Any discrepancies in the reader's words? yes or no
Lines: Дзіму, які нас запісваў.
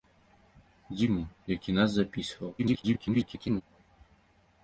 yes